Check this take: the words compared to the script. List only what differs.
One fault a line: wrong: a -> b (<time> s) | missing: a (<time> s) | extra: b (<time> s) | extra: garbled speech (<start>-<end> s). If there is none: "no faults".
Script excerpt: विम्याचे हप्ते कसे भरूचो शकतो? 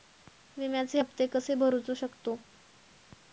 no faults